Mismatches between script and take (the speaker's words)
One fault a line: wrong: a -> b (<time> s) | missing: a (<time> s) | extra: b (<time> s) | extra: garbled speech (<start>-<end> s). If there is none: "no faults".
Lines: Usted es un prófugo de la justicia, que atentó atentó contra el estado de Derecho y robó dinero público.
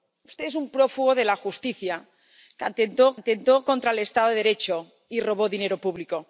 no faults